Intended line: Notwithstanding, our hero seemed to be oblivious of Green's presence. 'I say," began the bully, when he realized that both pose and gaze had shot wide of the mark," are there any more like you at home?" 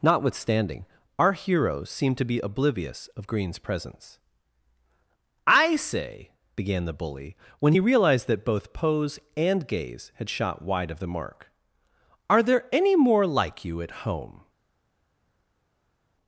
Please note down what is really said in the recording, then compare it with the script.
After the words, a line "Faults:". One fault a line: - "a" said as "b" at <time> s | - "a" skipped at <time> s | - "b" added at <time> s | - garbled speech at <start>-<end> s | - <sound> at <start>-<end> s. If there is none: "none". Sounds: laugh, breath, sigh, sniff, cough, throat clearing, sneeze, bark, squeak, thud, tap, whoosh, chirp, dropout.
Notwithstanding, our heroes seem to be oblivious of Green's presence. 'I say," began the bully, when he realized that both pose and gaze had shot wide of the mark," are there any more like you at home?"
Faults:
- "hero seemed" said as "heroes seem" at 1.3 s